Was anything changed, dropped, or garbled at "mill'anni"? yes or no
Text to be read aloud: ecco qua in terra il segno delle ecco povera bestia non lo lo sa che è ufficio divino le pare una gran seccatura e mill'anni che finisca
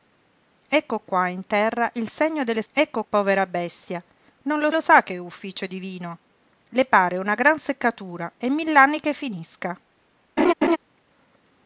no